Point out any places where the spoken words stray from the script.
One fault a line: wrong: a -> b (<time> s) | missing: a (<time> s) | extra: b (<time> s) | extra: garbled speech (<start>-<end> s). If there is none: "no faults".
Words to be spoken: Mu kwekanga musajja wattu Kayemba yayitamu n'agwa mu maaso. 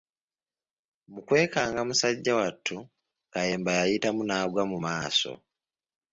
no faults